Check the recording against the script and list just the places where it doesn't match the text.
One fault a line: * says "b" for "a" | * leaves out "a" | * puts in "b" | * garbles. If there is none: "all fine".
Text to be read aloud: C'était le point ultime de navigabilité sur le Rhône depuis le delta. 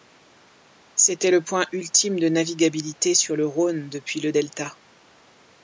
all fine